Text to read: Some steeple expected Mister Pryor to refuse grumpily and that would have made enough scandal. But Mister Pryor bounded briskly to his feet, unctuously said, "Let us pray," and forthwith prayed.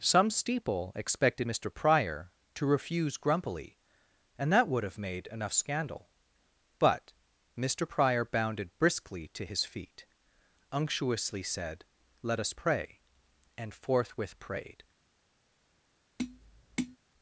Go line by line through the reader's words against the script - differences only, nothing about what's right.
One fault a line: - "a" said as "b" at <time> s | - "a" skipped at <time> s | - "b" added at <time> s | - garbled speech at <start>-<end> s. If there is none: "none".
none